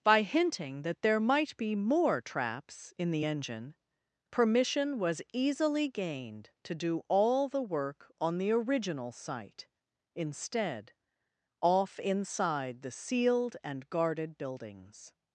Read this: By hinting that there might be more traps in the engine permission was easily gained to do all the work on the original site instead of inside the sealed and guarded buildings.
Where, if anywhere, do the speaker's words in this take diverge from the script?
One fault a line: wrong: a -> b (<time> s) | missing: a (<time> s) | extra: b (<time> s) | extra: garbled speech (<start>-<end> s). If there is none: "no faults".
wrong: of -> off (11.6 s)